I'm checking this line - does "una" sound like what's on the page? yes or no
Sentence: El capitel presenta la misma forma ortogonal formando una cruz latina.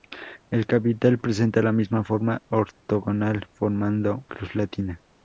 no